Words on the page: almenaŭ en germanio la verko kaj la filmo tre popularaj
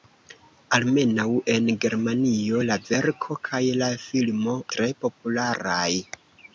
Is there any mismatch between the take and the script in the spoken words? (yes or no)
no